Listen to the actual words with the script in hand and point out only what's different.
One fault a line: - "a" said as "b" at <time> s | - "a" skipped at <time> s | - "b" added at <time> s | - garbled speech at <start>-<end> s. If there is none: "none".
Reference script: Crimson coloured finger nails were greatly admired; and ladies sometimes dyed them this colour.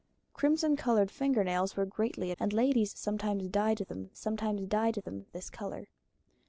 - "admired" skipped at 2.3 s
- "sometimes dyed them" added at 4.2 s